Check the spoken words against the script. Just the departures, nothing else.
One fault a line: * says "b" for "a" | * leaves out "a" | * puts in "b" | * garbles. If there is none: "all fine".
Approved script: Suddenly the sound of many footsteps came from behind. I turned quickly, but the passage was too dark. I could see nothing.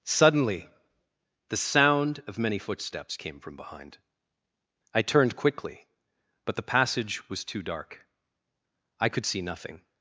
all fine